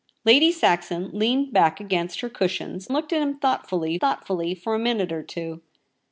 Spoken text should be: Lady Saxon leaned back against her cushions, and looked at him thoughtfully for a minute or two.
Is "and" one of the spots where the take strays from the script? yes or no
yes